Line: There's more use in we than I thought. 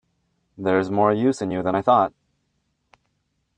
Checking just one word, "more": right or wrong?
right